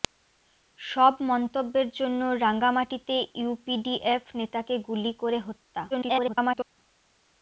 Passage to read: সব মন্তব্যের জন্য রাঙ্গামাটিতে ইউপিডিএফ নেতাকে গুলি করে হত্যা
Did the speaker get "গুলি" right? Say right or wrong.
right